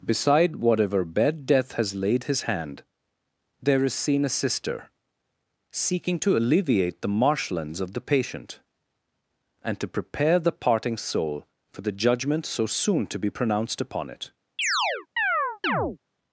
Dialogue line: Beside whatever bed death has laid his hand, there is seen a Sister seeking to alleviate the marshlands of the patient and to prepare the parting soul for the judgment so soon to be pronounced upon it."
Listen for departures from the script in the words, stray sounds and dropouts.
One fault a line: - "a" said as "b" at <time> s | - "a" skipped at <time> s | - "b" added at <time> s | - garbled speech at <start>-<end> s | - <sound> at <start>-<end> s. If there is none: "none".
- chirp at 14.6-16.0 s